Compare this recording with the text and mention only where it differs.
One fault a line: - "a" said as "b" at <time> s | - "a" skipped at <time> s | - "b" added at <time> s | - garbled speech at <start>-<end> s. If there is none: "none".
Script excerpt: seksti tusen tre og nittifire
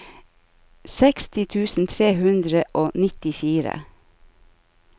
- "hundre" added at 2.2 s